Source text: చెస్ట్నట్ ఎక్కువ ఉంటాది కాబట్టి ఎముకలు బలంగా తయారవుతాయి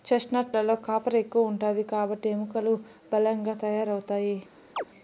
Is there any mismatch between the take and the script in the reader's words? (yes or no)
yes